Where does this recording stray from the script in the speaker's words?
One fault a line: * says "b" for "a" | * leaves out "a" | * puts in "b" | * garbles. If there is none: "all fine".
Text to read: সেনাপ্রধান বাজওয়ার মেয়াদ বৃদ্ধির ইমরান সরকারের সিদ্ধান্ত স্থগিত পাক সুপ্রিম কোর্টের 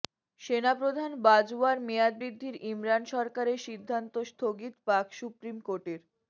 all fine